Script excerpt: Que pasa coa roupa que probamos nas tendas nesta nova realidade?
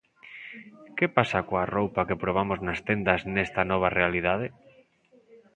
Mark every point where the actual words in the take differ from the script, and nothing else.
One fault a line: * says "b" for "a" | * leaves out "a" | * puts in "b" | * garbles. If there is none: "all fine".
all fine